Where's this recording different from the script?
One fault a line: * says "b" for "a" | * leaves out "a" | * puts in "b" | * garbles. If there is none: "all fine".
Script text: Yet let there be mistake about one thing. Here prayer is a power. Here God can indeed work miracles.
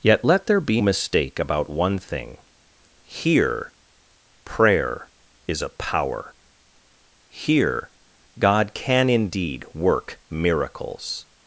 all fine